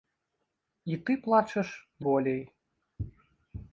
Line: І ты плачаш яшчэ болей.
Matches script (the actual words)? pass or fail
fail